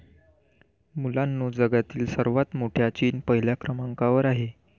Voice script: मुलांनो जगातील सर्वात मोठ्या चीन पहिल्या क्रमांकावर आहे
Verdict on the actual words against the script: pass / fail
pass